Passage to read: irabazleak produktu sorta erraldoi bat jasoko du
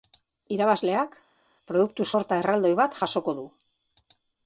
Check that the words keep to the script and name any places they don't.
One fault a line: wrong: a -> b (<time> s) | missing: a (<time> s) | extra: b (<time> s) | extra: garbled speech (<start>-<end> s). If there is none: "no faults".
no faults